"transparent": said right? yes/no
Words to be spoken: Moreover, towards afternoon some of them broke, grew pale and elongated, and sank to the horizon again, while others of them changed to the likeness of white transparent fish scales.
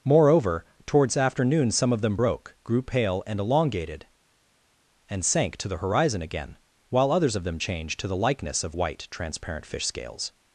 yes